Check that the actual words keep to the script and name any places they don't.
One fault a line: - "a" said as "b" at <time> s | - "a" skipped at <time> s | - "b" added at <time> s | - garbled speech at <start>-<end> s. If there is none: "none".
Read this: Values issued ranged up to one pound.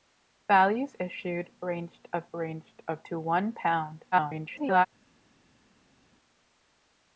- "ranged up" added at 2.3 s
- garbled speech at 4.1-4.9 s